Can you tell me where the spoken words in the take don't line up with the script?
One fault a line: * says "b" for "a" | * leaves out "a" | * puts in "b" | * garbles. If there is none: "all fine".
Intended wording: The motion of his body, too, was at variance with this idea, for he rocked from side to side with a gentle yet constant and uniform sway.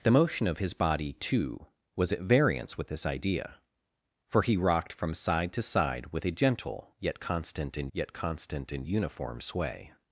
* puts in "yet constant and"